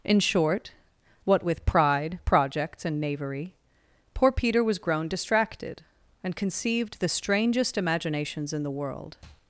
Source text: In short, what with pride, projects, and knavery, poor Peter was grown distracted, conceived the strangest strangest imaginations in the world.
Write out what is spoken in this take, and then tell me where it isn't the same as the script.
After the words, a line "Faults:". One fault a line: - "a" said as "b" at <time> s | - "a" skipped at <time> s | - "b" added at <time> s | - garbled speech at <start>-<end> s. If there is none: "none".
In short, what with pride, projects, and knavery, poor Peter was grown distracted, and conceived the strangest imaginations in the world.
Faults:
- "and" added at 6.2 s
- "strangest" skipped at 7.8 s